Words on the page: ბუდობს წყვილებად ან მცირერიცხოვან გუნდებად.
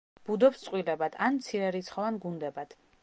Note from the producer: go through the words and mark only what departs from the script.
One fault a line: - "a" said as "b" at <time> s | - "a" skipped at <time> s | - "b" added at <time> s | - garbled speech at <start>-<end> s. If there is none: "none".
none